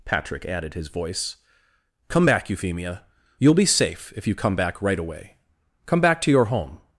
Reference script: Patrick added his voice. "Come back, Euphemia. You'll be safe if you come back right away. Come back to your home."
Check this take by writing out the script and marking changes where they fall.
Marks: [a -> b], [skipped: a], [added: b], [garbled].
Patrick added his voice. "Come back, Euphemia. You'll be safe if you come back right away. Come back to your home."